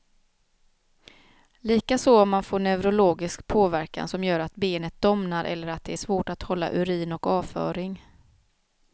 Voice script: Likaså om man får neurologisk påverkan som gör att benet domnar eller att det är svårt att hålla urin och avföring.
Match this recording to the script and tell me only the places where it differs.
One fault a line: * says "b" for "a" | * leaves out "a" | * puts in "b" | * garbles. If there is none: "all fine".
all fine